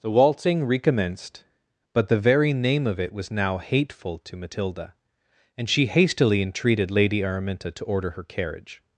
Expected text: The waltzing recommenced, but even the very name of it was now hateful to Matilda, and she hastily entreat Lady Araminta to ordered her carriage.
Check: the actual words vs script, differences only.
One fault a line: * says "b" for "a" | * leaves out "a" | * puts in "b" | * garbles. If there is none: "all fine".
* leaves out "even"
* says "entreated" for "entreat"
* says "order" for "ordered"